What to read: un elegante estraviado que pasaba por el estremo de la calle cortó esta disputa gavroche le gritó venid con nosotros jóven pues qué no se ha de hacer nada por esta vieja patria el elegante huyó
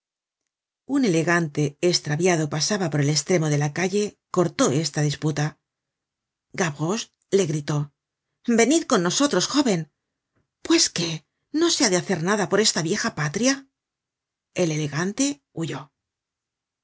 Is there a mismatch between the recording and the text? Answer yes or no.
yes